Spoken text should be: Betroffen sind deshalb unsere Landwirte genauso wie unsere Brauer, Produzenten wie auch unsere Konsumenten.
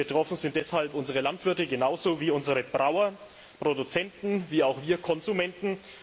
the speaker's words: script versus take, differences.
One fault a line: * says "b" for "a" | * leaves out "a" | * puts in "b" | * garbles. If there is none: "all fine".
* says "wir" for "unsere"